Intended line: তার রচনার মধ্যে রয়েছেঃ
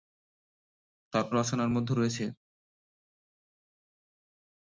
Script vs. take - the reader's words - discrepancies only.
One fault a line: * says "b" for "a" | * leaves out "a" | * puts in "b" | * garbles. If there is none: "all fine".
all fine